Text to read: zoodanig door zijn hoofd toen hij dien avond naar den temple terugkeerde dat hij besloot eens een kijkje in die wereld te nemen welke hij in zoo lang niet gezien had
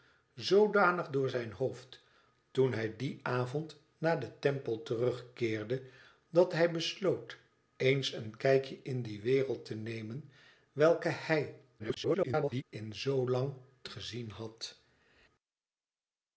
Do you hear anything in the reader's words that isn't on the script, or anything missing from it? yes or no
yes